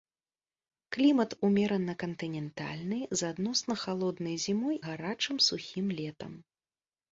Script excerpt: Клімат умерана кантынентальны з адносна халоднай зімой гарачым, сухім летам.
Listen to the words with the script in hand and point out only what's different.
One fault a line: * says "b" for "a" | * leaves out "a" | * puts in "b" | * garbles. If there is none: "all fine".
all fine